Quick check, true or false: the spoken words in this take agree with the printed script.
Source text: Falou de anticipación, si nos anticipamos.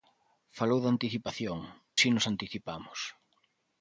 true